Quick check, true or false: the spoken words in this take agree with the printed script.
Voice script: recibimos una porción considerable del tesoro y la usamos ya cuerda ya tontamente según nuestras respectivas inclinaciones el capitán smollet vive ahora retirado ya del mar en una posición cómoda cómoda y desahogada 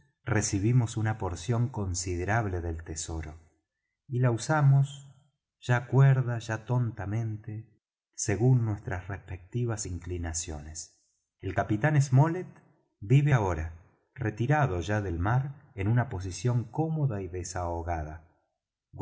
false